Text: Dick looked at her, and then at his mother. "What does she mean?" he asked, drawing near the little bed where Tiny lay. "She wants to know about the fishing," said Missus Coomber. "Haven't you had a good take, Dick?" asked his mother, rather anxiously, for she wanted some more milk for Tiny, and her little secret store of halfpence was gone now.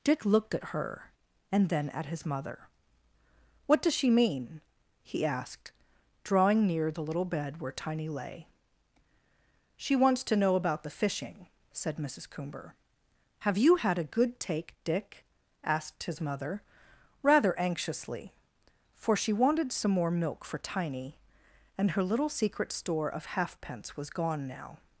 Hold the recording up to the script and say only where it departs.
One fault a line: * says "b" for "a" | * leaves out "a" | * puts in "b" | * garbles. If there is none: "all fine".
* says "Have" for "Haven't"